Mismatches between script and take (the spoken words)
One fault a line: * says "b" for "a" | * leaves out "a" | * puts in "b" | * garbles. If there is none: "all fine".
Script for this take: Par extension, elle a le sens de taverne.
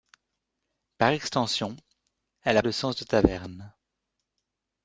all fine